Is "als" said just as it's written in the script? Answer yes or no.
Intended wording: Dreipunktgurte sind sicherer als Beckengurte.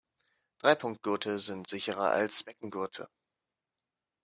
yes